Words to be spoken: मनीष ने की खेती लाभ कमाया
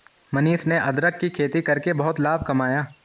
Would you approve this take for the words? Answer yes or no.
no